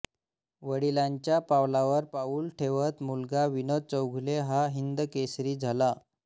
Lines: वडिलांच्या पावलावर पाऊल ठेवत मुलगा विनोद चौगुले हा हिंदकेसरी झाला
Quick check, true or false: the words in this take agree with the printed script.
true